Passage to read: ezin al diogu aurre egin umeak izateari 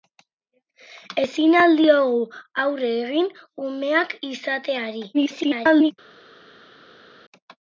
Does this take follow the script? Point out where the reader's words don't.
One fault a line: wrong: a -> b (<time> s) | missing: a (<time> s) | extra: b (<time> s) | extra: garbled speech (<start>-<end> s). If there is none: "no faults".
extra: garbled speech (5.1-5.9 s)